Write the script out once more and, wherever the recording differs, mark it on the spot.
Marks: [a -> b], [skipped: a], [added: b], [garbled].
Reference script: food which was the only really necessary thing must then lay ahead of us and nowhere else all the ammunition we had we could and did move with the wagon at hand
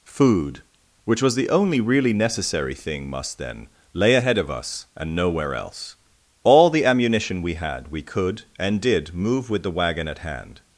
food which was the only really necessary thing must then lay ahead of us and nowhere else all the ammunition we had we could and did move with the wagon at hand